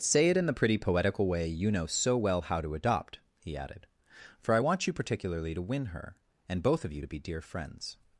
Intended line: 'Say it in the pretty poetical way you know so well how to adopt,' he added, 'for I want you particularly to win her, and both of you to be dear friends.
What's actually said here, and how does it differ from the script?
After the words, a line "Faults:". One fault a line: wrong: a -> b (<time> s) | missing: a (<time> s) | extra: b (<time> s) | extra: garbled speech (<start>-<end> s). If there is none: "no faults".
'Say it in the pretty poetical way you know so well how to adopt,' he added, 'for I want you particularly to win her, and both of you to be dear friends.
Faults:
no faults